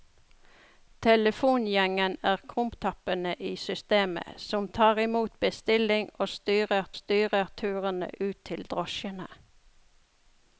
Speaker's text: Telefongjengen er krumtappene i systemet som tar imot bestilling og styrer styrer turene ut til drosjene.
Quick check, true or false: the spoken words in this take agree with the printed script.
true